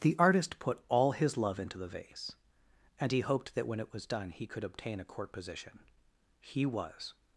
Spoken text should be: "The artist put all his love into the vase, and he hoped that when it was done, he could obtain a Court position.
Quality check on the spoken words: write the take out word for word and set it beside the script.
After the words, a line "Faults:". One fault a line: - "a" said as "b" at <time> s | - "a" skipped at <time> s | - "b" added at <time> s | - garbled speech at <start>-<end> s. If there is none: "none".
"The artist put all his love into the vase, and he hoped that when it was done, he could obtain a Court position. He was
Faults:
- "He was" added at 6.4 s